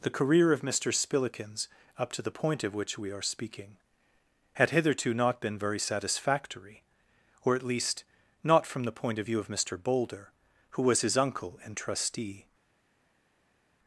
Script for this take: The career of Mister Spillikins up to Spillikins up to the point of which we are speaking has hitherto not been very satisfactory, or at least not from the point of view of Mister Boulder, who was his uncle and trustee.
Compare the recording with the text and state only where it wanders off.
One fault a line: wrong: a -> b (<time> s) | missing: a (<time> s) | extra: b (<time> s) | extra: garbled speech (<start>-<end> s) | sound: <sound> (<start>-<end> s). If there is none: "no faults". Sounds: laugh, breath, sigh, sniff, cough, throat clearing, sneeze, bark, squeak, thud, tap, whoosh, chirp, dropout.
missing: Spillikins up to (2.2 s)
wrong: has -> had (4.5 s)